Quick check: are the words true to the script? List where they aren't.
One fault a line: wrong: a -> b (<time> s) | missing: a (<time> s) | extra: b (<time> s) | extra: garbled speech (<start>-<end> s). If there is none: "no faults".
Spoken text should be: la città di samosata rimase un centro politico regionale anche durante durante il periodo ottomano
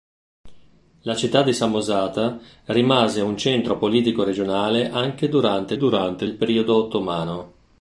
no faults